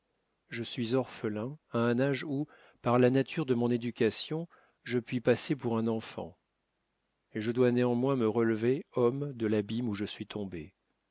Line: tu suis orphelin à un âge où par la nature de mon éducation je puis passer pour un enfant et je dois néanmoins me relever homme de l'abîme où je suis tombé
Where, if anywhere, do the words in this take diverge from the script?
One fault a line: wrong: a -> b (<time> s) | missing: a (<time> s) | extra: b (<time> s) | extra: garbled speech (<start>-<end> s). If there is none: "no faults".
wrong: tu -> je (0.5 s)